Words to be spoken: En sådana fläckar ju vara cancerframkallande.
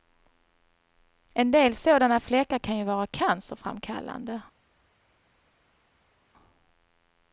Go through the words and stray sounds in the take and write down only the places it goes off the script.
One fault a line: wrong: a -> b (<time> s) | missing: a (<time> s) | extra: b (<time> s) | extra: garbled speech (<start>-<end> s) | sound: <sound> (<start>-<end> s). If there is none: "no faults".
extra: del (1.5 s)
extra: kan (2.6 s)